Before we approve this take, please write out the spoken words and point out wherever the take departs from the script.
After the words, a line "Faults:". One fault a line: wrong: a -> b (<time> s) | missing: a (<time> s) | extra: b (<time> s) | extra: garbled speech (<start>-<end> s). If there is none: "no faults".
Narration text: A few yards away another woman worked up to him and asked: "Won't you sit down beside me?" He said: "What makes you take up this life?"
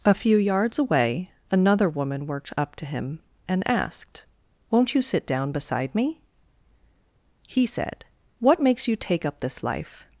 A few yards away another woman worked up to him and asked: "Won't you sit down beside me?" He said: "What makes you take up this life?"
Faults:
no faults